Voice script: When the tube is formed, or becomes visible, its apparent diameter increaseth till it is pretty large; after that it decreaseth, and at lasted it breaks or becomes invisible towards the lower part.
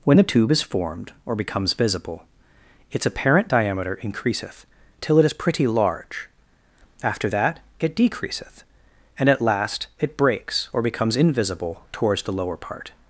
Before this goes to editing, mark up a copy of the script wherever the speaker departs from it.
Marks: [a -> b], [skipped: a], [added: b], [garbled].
When the tube is formed, or becomes visible, its apparent diameter increaseth till it is pretty large; after that it decreaseth, and at [lasted -> last] it breaks or becomes invisible towards the lower part.